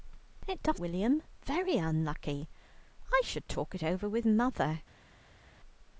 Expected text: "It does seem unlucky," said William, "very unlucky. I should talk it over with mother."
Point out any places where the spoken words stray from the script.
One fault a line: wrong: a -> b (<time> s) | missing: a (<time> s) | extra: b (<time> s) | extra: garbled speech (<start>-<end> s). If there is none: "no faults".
missing: seem unlucky said (0.8 s)